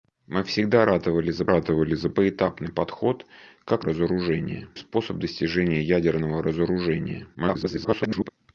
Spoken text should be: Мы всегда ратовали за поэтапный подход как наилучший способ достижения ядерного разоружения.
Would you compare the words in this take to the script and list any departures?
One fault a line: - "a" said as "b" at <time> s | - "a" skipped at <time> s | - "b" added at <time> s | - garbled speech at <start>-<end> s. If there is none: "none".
- "ратовали за" added at 1.5 s
- "наилучший" said as "разоружения" at 3.8 s
- garbled speech at 7.3-8.3 s